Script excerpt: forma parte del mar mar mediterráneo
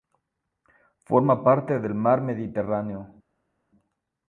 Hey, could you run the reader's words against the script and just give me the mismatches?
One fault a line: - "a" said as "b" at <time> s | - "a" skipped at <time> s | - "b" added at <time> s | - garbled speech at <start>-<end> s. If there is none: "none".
- "mar" skipped at 2.2 s